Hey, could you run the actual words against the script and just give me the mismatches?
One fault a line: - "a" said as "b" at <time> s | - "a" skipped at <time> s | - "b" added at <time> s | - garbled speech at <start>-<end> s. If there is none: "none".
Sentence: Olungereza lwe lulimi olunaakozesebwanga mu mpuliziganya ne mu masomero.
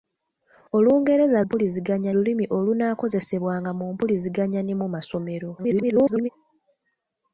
- "lwe" said as "mpuliziganya" at 1.4 s
- garbled speech at 5.6-6.3 s